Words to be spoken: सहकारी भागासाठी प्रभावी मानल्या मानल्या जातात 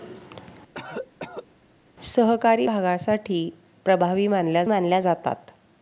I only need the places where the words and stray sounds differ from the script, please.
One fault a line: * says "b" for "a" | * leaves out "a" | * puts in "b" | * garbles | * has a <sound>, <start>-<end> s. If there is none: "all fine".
* has a cough, 0.7-1.5 s